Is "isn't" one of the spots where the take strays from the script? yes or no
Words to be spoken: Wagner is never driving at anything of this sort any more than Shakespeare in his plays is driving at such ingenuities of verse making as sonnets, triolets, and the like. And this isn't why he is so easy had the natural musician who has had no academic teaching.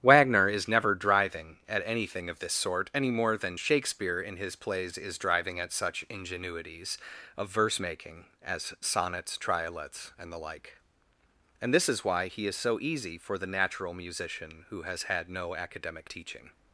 yes